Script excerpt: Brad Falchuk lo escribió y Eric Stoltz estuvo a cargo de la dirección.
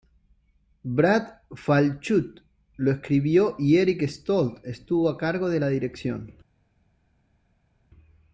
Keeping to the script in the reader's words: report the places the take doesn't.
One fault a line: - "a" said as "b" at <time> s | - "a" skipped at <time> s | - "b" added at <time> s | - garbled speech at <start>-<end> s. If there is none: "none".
none